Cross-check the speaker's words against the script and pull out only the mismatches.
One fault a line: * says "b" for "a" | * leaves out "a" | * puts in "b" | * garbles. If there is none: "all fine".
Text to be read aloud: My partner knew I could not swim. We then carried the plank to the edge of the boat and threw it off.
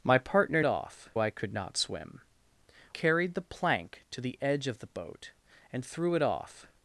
* says "off" for "knew"
* leaves out "We then"